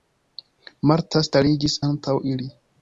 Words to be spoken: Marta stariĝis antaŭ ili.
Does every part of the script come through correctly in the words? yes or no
yes